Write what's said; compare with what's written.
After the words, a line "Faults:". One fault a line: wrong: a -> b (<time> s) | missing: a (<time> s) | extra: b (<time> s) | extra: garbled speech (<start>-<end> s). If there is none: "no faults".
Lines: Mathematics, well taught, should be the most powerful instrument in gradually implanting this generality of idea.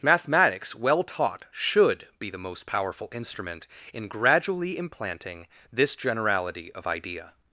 Mathematics, well taught, should be the most powerful instrument in gradually implanting this generality of idea.
Faults:
no faults